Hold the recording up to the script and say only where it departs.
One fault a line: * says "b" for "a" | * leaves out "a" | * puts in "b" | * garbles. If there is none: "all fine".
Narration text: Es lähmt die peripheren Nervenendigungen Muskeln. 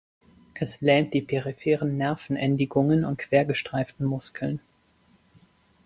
* puts in "und quergestreiften"